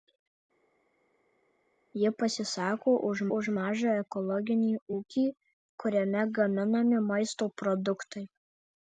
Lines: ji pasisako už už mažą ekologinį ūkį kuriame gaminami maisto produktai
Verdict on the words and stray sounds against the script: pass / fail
pass